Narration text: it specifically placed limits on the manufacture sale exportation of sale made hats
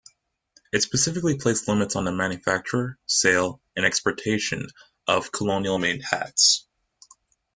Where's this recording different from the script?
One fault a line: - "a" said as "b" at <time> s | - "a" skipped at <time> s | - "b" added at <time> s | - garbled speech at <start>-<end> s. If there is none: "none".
- "and" added at 3.8 s
- "sale" said as "colonial" at 5.3 s